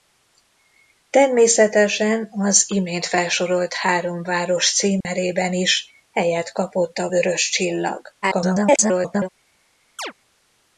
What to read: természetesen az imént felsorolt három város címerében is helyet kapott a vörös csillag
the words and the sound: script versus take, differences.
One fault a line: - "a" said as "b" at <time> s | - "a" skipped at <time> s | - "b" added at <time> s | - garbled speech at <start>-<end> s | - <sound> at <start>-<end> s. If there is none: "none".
- dropout at 5.0-5.1 s
- garbled speech at 8.2-9.3 s
- chirp at 10.0-10.1 s